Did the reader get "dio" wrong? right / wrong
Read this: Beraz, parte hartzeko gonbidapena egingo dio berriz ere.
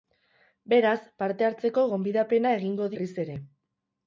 wrong